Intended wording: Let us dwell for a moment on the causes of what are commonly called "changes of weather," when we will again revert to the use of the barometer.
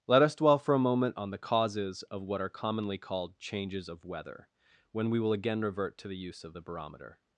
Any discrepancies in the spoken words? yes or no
no